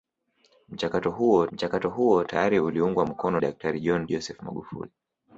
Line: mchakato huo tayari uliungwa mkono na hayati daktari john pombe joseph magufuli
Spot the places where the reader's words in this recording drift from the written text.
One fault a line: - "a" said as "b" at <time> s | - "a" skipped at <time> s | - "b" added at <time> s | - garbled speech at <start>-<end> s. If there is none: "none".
- "mchakato huo" added at 1.5 s
- "na hayati" skipped at 3.4 s
- "pombe" skipped at 4.1 s